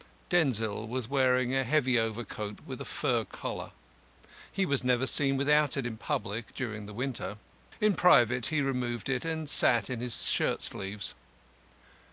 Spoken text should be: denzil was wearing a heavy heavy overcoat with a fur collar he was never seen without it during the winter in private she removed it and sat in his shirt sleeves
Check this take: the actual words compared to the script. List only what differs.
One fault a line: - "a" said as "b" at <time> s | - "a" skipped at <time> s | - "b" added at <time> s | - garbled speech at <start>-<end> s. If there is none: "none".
- "heavy" skipped at 2.0 s
- "in public" added at 5.9 s
- "she" said as "he" at 8.5 s